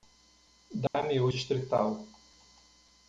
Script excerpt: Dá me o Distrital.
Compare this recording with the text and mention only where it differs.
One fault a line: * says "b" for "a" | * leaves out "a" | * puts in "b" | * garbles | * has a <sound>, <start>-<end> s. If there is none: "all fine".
* has a dropout, 0.9-0.9 s